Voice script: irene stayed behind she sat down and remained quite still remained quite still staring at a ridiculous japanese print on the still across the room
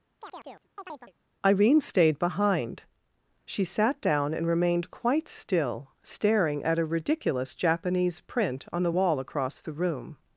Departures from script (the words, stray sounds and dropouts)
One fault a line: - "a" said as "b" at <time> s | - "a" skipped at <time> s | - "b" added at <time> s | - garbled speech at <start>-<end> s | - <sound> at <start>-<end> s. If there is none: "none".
- chirp at 0.2-1.1 s
- "remained quite still" skipped at 5.9 s
- "still" said as "wall" at 8.9 s